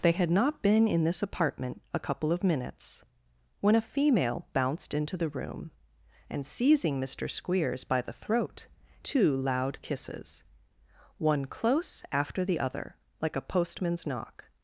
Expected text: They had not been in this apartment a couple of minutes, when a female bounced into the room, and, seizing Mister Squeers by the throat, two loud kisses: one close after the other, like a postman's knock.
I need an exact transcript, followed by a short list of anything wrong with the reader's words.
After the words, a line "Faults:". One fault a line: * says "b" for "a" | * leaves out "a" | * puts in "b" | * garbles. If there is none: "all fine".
They had not been in this apartment a couple of minutes, when a female bounced into the room, and, seizing Mister Squeers by the throat, two loud kisses: one close after the other, like a postman's knock.
Faults:
all fine